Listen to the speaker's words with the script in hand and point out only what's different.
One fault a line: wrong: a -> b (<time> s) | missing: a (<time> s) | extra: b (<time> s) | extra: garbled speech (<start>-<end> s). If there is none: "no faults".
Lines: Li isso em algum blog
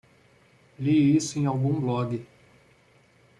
no faults